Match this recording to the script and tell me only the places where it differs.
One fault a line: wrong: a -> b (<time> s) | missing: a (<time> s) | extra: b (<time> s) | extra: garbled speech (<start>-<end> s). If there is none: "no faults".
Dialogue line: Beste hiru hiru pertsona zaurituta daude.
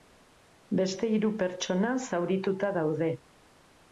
missing: hiru (1.3 s)